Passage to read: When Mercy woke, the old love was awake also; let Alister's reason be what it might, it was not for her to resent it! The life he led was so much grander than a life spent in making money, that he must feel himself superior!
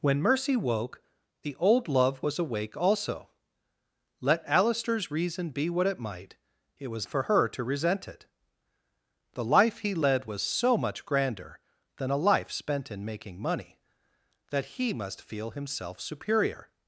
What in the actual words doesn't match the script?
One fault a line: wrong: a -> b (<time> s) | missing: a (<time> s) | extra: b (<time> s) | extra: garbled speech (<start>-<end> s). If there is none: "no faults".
missing: not (7.1 s)